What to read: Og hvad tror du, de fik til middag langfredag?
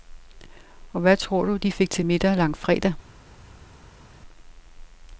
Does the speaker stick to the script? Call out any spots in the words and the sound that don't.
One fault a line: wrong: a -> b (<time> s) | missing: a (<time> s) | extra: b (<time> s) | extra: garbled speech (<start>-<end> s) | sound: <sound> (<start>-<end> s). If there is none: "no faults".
no faults